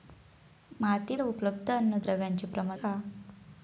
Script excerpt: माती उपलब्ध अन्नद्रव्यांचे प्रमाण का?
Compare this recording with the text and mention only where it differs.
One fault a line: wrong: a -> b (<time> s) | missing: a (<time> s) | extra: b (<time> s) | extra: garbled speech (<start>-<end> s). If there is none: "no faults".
no faults